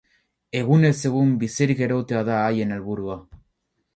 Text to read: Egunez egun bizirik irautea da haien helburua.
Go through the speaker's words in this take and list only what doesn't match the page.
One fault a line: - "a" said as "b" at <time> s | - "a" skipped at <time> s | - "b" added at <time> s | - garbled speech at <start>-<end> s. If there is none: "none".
none